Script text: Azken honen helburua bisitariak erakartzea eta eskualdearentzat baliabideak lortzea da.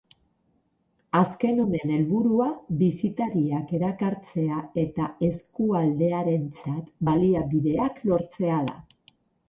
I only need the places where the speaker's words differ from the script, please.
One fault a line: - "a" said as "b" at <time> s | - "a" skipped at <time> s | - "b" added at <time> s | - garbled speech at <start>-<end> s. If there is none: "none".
none